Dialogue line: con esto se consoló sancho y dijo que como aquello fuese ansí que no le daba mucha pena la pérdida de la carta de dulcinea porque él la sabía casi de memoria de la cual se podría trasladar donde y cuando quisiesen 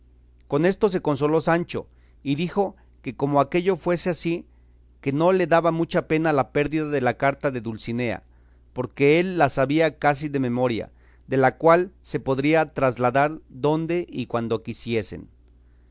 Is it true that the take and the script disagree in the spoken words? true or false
false